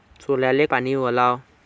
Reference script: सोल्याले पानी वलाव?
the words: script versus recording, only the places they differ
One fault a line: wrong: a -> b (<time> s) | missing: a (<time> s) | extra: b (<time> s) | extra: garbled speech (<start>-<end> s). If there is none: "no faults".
no faults